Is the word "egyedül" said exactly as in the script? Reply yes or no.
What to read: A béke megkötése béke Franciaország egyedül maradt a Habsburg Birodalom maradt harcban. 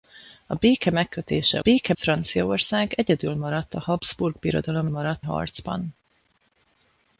yes